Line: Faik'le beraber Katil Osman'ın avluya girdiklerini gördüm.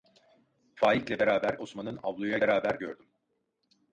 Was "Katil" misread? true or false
true